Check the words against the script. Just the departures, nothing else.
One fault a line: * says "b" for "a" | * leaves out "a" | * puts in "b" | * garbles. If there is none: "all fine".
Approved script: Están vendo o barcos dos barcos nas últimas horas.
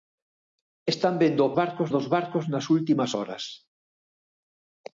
all fine